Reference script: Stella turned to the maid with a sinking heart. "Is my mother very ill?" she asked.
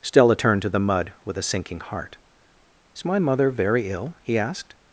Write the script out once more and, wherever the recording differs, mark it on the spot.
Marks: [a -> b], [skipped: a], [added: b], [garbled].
Stella turned to the [maid -> mud] with a sinking heart. "Is my mother very ill?" [she -> he] asked.